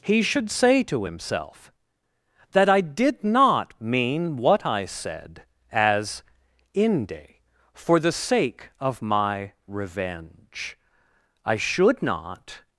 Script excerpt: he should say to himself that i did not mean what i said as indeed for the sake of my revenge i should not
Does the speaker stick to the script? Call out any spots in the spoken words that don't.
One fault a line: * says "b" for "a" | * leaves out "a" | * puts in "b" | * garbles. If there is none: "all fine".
* says "inde" for "indeed"